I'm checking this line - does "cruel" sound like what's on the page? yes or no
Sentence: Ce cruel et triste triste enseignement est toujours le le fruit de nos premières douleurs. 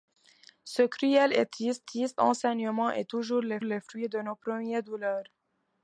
yes